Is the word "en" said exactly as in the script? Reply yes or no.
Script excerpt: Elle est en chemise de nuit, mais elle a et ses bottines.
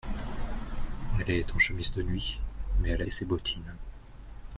yes